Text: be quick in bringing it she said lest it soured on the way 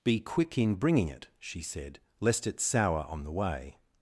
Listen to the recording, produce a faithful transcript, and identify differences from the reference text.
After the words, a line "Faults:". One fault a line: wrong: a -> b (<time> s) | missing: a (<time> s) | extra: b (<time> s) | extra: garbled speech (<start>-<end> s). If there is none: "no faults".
be quick in bringing it she said lest it sour on the way
Faults:
wrong: soured -> sour (2.6 s)